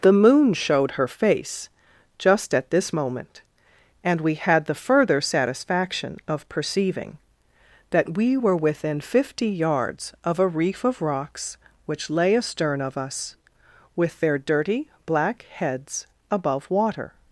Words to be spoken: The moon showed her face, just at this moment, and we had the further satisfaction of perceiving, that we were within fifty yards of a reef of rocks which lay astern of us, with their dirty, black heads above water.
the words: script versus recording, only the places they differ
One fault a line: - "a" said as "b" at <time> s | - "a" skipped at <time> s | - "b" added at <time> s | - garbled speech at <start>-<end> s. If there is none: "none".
none